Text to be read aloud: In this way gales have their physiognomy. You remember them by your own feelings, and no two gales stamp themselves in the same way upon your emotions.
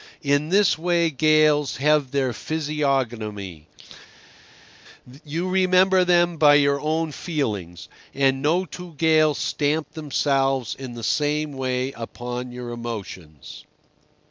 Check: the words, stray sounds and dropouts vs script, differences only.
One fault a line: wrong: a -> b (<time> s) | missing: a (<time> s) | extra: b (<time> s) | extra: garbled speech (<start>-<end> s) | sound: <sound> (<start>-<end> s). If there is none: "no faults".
no faults